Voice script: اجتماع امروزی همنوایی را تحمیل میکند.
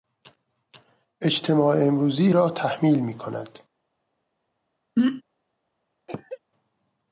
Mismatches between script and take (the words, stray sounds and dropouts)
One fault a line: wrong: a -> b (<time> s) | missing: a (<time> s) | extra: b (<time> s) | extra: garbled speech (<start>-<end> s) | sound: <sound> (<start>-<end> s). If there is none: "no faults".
missing: همنوایی (2.3 s)
sound: throat clearing (5.0-5.2 s)
sound: cough (6.1-6.4 s)